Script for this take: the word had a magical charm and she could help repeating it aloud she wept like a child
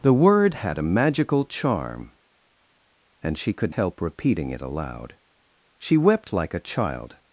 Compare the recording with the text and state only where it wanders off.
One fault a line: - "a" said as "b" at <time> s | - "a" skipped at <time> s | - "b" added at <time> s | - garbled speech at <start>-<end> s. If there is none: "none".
none